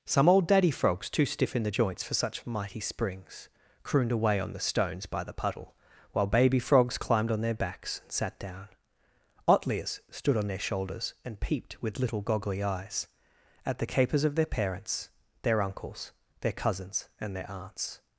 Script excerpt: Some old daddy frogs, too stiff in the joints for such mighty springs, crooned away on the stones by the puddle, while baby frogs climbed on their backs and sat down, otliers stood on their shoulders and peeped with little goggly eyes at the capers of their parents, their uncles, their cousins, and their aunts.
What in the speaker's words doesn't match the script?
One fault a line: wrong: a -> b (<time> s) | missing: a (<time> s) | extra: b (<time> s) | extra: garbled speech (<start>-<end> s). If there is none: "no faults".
no faults